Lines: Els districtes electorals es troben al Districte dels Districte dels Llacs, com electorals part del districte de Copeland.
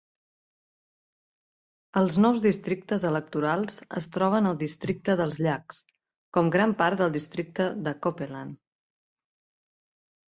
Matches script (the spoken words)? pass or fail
fail